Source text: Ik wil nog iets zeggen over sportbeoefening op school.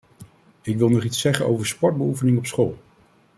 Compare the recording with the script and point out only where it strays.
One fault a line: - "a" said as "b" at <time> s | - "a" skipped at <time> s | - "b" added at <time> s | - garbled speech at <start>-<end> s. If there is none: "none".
none